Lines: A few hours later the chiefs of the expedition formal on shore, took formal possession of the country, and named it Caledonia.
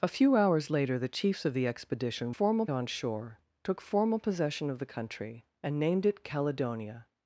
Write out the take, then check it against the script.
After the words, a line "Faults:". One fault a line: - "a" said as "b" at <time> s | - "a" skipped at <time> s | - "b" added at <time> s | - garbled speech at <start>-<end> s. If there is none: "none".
A few hours later the chiefs of the expedition formal on shore, took formal possession of the country, and named it Caledonia.
Faults:
none